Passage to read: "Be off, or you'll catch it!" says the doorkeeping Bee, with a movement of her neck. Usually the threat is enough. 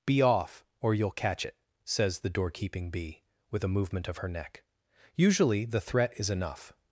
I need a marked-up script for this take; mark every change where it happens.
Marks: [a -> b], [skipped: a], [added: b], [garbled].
"Be off, or you'll catch it!" says the doorkeeping Bee, with a movement of her neck. Usually the threat is enough.